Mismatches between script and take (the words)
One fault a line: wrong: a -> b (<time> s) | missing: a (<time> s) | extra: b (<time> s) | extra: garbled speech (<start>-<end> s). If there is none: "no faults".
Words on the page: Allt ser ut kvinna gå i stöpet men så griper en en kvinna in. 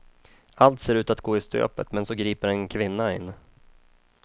wrong: kvinna -> att (1.1 s)
missing: en (2.7 s)